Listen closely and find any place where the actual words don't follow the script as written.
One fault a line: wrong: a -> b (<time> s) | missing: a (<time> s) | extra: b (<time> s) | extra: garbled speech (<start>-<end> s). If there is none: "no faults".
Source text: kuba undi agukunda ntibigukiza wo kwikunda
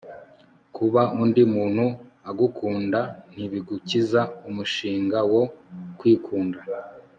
extra: muntu (1.5 s)
extra: umushinga (4.5 s)